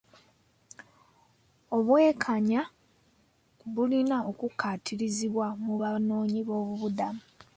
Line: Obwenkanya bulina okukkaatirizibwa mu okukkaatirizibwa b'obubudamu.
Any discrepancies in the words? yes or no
yes